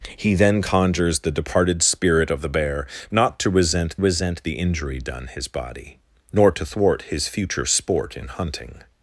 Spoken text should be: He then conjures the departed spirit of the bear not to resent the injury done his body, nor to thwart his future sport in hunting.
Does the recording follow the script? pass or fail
fail